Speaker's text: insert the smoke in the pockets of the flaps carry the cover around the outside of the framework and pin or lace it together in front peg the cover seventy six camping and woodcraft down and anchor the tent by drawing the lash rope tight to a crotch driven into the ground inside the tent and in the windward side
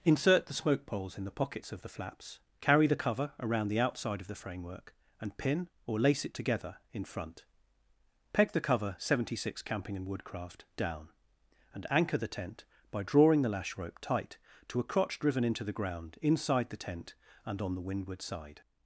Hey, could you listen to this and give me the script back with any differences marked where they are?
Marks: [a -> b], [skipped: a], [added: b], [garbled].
insert the smoke [added: poles] in the pockets of the flaps carry the cover around the outside of the framework and pin or lace it together in front peg the cover seventy six camping and woodcraft down and anchor the tent by drawing the lash rope tight to a crotch driven into the ground inside the tent and [in -> on] the windward side